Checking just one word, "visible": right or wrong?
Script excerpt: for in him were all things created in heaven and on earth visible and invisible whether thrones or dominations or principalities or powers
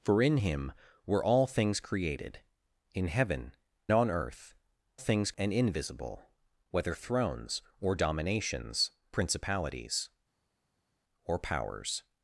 wrong